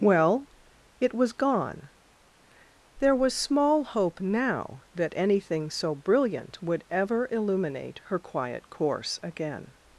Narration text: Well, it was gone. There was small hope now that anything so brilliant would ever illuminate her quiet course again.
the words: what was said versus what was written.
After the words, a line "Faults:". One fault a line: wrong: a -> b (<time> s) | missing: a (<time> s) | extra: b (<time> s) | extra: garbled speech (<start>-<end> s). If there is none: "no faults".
Well, it was gone. There was small hope now that anything so brilliant would ever illuminate her quiet course again.
Faults:
no faults